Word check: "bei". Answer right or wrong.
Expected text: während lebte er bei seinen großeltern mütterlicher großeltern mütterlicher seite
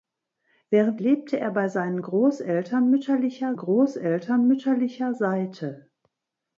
right